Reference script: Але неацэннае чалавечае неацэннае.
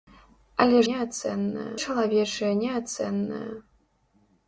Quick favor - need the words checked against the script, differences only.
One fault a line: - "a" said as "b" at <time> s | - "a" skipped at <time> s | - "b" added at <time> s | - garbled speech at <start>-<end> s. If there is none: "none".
none